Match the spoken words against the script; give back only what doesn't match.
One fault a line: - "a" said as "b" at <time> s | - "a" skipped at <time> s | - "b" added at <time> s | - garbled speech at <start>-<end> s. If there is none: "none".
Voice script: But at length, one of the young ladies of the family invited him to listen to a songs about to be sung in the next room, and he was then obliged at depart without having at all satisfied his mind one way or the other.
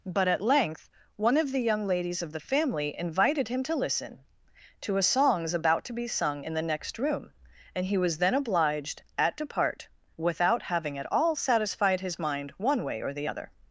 none